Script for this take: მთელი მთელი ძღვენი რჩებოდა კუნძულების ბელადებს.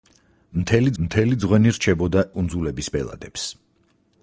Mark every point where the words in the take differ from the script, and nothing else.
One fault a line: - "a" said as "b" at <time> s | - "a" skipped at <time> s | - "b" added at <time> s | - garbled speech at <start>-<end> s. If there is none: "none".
none